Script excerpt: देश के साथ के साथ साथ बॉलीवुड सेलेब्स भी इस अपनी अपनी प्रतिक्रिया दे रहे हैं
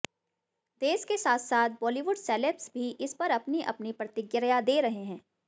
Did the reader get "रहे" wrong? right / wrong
right